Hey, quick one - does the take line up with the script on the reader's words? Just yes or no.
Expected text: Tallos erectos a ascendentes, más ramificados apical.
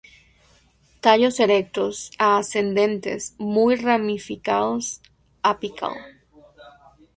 no